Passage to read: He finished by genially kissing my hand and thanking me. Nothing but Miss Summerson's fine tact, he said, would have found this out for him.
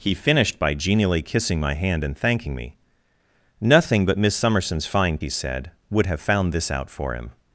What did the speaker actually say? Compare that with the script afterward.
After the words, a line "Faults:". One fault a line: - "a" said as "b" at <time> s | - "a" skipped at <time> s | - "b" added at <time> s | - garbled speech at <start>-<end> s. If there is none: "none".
He finished by genially kissing my hand and thanking me. Nothing but Miss Summerson's fine he said, would have found this out for him.
Faults:
- "tact" skipped at 5.2 s